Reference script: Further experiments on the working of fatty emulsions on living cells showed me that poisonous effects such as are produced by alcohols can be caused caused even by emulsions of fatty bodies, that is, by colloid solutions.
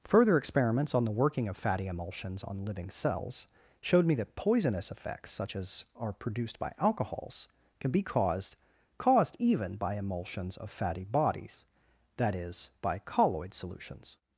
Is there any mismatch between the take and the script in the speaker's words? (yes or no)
no